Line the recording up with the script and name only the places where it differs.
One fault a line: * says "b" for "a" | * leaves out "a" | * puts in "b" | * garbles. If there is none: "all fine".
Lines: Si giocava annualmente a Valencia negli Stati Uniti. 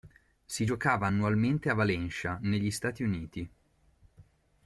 all fine